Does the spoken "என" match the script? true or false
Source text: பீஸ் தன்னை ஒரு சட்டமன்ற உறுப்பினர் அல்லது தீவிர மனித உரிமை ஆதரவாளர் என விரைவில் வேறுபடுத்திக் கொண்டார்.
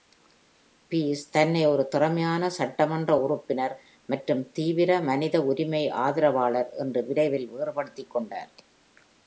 false